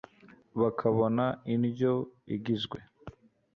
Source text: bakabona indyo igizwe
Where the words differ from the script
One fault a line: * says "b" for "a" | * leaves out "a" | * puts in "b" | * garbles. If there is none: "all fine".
all fine